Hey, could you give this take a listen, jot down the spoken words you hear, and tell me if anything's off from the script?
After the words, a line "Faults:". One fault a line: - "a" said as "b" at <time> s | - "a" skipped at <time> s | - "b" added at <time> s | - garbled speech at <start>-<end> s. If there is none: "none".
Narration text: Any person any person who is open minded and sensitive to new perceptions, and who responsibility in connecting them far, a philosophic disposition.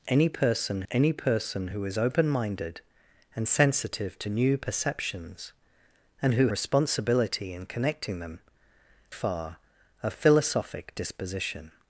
Any person any person who is open minded and sensitive to new perceptions, and who responsibility in connecting them far, a philosophic disposition.
Faults:
none